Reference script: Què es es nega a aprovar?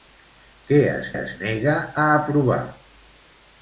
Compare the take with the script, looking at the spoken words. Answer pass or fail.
pass